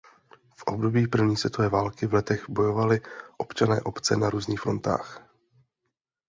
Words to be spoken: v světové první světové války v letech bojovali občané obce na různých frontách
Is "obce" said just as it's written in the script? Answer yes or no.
yes